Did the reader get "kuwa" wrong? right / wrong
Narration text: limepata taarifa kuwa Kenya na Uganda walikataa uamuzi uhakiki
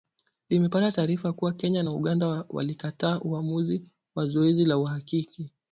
right